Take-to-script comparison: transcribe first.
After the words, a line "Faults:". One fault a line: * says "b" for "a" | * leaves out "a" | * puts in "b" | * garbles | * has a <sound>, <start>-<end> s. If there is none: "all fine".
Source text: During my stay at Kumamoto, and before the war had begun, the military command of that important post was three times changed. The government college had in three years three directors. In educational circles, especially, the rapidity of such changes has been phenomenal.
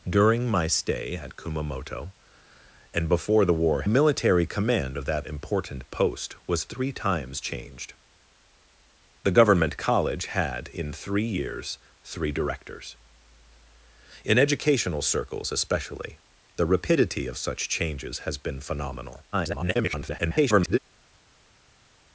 During my stay at Kumamoto, and before the war military command of that important post was three times changed. The government college had in three years three directors. In educational circles, especially, the rapidity of such changes has been phenomenal. [garbled]
Faults:
* leaves out "had begun the"
* garbles